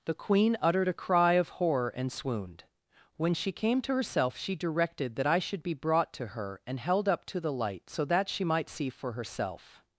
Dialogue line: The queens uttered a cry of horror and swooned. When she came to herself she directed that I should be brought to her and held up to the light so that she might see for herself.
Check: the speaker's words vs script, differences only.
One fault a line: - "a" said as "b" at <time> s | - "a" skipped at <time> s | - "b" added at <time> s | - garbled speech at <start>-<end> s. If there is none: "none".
- "queens" said as "queen" at 0.1 s